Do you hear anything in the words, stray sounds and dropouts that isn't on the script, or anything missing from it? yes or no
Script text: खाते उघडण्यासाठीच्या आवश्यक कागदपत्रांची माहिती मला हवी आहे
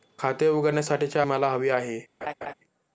yes